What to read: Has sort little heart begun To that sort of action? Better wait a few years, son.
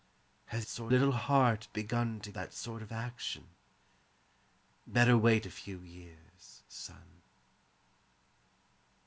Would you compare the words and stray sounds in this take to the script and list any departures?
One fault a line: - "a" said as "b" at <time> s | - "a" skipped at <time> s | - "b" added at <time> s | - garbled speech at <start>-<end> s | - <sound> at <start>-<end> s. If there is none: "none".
none